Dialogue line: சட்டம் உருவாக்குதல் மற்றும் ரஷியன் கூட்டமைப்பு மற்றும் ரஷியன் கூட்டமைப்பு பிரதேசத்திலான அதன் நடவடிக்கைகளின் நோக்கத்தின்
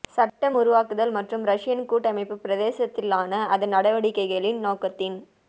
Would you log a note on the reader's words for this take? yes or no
yes